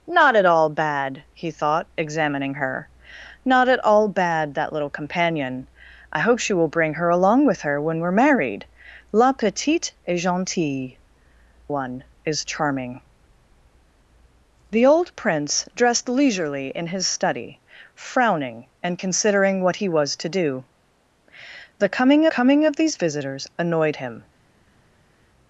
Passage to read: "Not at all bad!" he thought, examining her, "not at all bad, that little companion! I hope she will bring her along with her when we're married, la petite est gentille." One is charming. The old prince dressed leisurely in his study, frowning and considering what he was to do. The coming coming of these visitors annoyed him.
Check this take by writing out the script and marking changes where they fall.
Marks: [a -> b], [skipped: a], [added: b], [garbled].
"Not at all bad!" he thought, examining her, "not at all bad, that little companion! I hope she will bring her along with her when we're married, la petite est gentille." One is charming. The old prince dressed leisurely in his study, frowning and considering what he was to do. The coming coming of these visitors annoyed him.